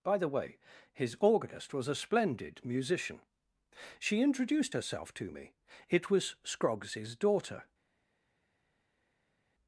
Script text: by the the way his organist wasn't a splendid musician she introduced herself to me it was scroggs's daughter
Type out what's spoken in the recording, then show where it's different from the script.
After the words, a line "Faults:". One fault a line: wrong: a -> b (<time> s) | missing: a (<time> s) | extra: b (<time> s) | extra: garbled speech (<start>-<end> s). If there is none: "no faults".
by the way his organist was a splendid musician she introduced herself to me it was scroggs's daughter
Faults:
missing: the (0.3 s)
wrong: wasn't -> was (1.7 s)